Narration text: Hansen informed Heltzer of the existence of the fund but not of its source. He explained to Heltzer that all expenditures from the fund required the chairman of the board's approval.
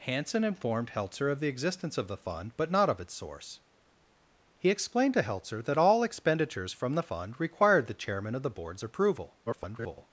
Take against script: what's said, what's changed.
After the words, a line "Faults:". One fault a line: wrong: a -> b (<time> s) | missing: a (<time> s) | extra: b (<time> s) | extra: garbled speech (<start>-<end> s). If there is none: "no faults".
Hansen informed Heltzer of the existence of the fund but not of its source. He explained to Heltzer that all expenditures from the fund required the chairman of the board's approval. [garbled]
Faults:
extra: garbled speech (9.5-10.1 s)